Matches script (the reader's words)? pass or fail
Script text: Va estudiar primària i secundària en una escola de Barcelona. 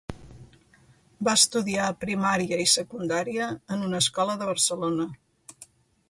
pass